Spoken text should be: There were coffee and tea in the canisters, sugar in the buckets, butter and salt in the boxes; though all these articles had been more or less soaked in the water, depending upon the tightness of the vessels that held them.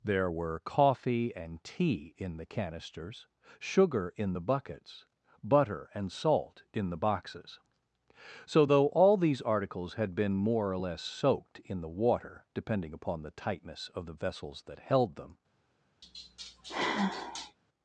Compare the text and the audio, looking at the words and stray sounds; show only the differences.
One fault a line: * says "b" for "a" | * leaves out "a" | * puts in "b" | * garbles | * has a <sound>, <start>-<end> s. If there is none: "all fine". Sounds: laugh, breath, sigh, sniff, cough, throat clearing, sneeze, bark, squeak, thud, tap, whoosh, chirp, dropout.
* puts in "so"
* has a sigh, 16.0-17.6 s